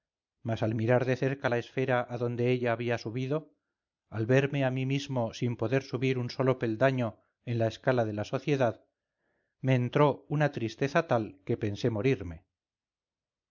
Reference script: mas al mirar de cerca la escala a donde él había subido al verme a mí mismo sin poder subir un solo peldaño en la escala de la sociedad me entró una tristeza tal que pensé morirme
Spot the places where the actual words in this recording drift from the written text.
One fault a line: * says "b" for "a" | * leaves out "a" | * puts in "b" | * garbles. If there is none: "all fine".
* says "esfera" for "escala"
* says "ella" for "él"